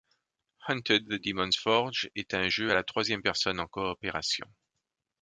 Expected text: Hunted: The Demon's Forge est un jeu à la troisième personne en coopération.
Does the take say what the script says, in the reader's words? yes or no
yes